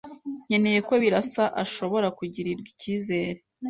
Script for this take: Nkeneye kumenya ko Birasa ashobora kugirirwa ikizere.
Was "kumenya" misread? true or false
true